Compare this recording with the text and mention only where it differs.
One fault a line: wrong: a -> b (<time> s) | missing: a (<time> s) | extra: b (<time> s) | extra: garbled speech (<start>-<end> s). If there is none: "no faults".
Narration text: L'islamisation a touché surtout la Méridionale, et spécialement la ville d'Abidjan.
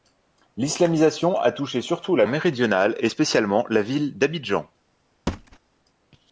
no faults